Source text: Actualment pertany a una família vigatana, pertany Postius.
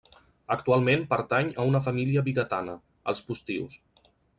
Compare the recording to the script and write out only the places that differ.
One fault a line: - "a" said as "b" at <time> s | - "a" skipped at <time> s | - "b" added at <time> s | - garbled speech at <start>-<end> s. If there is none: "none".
- "pertany" said as "els" at 3.1 s